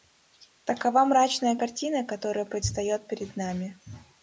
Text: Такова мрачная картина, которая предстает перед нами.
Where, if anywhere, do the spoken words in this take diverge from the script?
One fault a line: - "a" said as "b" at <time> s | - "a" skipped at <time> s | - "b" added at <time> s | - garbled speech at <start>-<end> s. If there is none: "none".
none